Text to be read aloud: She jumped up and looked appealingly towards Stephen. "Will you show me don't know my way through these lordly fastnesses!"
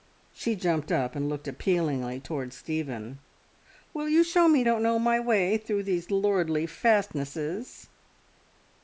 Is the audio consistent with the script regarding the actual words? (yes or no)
yes